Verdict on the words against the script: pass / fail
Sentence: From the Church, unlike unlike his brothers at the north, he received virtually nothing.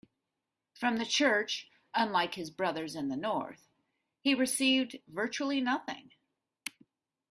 fail